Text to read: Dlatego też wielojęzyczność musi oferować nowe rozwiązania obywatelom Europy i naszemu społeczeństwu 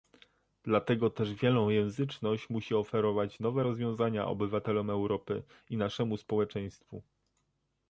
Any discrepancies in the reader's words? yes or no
no